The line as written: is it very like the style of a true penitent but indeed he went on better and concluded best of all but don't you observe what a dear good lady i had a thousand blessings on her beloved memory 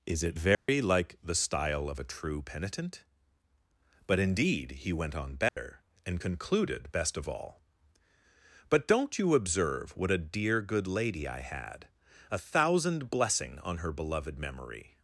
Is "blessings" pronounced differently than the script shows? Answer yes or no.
yes